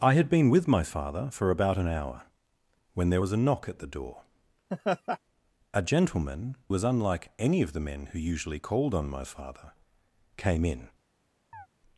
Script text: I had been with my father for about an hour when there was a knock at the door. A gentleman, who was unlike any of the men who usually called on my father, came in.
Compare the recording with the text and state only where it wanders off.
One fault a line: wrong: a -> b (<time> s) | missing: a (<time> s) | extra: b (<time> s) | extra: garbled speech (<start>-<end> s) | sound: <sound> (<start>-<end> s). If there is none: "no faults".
sound: laugh (4.7-5.2 s)
missing: who (6.6 s)
sound: chirp (11.5-11.7 s)